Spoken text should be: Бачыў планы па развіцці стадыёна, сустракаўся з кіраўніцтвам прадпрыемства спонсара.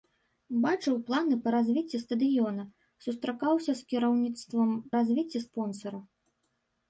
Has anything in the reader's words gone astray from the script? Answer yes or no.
yes